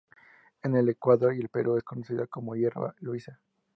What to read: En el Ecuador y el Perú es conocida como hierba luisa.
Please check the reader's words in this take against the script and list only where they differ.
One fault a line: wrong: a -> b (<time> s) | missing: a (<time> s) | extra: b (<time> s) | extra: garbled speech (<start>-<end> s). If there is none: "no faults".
no faults